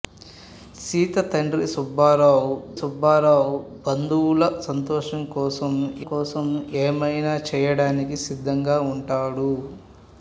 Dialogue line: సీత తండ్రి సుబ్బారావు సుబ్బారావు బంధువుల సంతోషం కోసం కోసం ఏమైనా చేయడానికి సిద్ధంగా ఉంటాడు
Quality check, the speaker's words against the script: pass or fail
pass